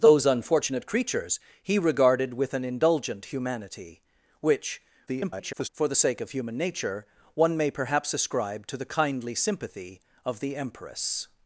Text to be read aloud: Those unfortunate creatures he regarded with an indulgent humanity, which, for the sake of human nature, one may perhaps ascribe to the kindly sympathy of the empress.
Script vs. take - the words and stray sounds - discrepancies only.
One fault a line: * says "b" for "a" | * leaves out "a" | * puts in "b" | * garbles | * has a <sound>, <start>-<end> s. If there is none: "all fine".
* garbles